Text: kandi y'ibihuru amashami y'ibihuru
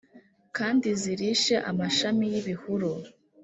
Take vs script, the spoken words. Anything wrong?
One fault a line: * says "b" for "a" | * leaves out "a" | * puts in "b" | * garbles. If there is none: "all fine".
* says "zirishe" for "y'ibihuru"